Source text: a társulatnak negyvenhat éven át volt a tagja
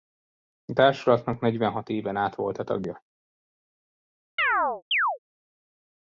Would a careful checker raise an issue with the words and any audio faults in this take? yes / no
yes